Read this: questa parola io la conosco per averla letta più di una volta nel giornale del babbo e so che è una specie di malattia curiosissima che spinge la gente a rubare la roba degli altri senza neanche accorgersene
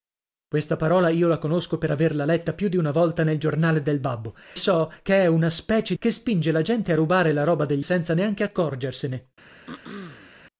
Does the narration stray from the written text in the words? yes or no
yes